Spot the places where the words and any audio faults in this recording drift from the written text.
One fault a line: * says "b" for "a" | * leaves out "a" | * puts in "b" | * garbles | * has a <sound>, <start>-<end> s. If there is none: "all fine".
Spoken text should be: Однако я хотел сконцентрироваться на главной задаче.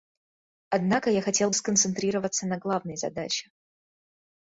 all fine